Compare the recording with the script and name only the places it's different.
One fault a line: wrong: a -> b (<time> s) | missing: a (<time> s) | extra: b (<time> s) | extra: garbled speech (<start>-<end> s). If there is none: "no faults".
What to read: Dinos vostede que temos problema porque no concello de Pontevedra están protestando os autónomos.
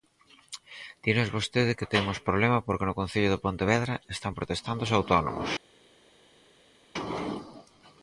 no faults